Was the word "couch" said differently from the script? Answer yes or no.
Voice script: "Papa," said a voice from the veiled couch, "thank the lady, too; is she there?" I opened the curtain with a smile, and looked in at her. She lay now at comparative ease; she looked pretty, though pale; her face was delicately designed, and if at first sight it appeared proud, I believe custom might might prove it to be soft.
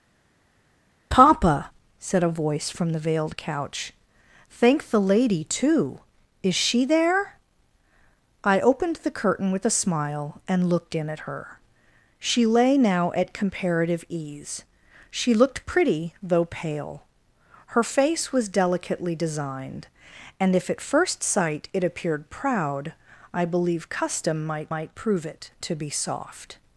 no